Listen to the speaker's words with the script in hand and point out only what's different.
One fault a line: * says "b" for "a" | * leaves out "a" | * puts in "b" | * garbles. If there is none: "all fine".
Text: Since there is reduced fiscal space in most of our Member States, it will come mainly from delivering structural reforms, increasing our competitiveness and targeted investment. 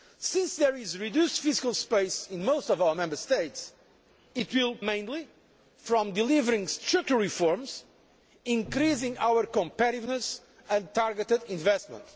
* leaves out "come"